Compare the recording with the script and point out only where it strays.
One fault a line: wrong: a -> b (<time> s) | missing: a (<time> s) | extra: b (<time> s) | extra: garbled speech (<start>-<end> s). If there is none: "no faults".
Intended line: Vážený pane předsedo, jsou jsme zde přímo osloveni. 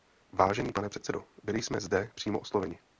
wrong: jsou -> byli (1.4 s)